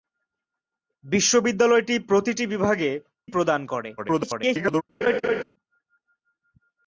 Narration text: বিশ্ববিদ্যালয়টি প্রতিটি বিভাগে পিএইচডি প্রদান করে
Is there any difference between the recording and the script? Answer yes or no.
yes